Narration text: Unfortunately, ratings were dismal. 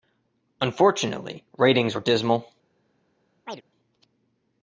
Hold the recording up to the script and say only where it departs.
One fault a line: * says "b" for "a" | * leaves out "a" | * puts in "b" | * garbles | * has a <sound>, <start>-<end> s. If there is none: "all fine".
* has a chirp, 3.4-3.6 s